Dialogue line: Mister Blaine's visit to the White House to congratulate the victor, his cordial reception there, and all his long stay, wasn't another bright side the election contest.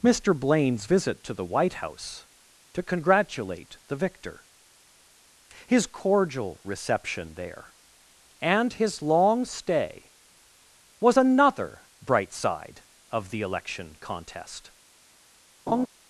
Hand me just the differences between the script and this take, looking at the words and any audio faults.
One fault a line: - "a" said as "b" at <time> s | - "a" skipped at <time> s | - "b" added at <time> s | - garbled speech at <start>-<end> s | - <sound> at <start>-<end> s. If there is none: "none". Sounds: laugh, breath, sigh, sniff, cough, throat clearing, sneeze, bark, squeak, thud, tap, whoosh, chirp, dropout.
- "all" skipped at 8.7 s
- "wasn't" said as "was" at 11.0 s
- "of" added at 13.1 s
- laugh at 15.7-15.9 s